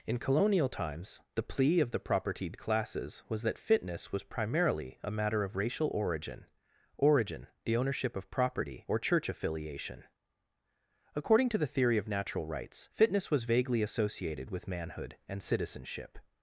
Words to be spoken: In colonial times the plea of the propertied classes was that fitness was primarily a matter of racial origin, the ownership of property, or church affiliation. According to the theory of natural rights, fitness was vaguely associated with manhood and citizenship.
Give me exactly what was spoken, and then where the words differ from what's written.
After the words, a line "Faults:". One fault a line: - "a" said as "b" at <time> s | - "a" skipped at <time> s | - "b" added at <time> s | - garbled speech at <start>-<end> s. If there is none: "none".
In colonial times the plea of the propertied classes was that fitness was primarily a matter of racial origin origin, the ownership of property, or church affiliation. According to the theory of natural rights, fitness was vaguely associated with manhood and citizenship.
Faults:
- "origin" added at 7.0 s